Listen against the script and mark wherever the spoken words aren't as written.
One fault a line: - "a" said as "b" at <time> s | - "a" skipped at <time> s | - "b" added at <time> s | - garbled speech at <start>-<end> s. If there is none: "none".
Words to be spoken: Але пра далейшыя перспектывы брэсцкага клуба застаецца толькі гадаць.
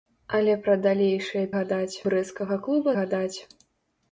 - "перспектывы" said as "гадаць" at 1.6 s
- "застаецца толькі" skipped at 2.9 s